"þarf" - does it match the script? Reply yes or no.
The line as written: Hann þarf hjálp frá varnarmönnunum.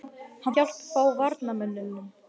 no